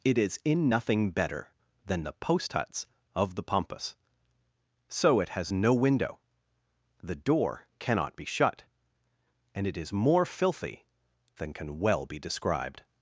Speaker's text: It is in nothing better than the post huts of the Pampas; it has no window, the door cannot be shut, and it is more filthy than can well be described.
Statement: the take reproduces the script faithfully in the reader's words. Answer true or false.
false